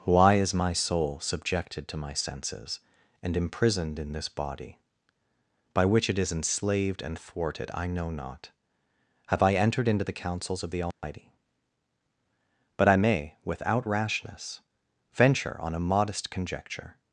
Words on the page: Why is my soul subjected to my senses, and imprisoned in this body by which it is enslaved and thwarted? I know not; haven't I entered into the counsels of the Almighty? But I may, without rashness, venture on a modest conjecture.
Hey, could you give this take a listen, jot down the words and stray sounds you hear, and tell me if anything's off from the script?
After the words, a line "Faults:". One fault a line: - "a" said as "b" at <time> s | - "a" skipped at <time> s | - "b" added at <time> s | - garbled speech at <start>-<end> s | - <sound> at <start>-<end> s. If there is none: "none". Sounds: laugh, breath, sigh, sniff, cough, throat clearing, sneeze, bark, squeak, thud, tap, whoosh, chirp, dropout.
Why is my soul subjected to my senses, and imprisoned in this body by which it is enslaved and thwarted? I know not; have I entered into the counsels of the Almighty? But I may, without rashness, venture on a modest conjecture.
Faults:
- "haven't" said as "have" at 9.3 s
- dropout at 10.9-11.0 s